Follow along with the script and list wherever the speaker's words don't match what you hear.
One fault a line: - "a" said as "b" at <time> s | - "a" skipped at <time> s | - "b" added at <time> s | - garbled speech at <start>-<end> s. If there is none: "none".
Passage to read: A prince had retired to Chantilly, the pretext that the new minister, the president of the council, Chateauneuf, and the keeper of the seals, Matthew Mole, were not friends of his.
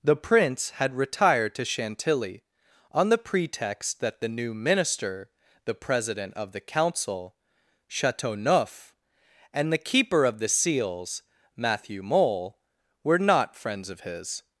- "A" said as "The" at 0.0 s
- "on" added at 2.9 s